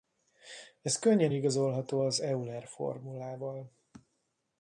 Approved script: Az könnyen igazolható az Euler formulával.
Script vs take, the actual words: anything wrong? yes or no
yes